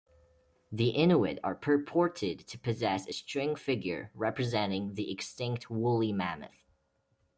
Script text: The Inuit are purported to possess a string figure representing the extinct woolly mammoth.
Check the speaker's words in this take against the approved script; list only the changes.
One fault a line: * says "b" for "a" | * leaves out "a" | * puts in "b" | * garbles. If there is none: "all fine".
all fine